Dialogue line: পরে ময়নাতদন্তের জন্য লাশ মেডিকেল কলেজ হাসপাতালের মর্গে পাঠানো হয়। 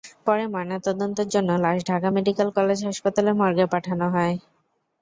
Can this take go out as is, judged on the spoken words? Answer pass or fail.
fail